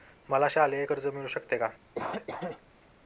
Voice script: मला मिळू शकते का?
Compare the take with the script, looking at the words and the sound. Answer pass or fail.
fail